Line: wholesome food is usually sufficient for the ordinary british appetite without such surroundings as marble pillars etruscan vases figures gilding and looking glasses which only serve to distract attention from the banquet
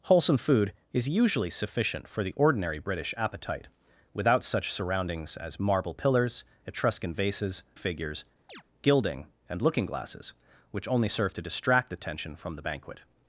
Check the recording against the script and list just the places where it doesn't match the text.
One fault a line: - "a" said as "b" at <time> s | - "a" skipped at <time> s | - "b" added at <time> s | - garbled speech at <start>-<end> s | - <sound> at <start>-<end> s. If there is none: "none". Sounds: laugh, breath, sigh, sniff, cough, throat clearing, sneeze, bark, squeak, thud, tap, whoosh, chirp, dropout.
- chirp at 8.5-8.6 s